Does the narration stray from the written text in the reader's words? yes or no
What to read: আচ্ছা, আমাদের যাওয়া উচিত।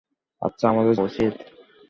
yes